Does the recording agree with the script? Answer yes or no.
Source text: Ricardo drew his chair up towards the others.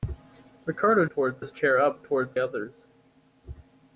no